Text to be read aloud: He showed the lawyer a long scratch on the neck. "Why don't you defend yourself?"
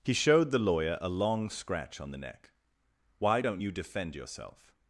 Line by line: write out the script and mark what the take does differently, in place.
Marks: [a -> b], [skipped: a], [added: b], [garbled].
He showed the lawyer a long scratch on the neck. "Why don't you defend yourself?"